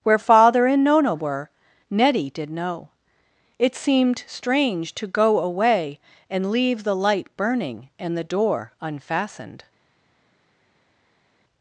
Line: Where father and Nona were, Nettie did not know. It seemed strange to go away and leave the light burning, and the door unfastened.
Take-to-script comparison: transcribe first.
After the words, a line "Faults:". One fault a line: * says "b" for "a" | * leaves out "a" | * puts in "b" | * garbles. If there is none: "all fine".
Where father and Nona were, Nettie did know. It seemed strange to go away and leave the light burning, and the door unfastened.
Faults:
* leaves out "not"